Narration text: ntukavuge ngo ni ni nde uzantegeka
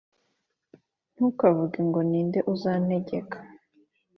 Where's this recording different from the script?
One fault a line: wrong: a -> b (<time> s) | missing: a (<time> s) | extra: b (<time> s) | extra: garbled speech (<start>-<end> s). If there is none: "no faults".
missing: ni (2.2 s)